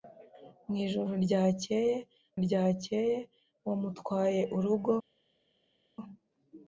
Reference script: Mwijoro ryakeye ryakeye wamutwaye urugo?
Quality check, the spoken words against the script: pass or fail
pass